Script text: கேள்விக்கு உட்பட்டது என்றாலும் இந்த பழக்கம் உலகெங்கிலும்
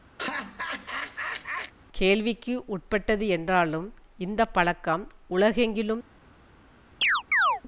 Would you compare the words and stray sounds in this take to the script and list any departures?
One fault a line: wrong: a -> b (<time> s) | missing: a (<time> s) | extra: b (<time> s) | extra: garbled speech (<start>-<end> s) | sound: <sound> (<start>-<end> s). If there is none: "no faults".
sound: laugh (0.2-1.7 s)
sound: chirp (7.0-7.6 s)